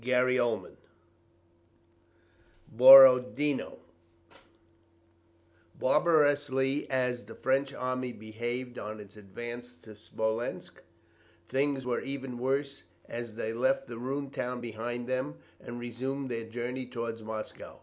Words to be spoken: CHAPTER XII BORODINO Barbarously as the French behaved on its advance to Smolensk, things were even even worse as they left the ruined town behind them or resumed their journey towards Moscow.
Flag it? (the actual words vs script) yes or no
yes